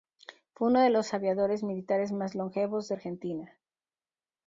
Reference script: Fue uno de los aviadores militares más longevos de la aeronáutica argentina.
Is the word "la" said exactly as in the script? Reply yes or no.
no